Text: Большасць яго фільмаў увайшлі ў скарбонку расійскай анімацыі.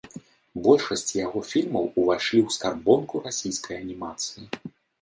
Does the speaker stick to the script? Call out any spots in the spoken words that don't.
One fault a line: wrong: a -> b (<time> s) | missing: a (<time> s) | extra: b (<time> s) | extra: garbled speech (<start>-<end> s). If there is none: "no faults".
no faults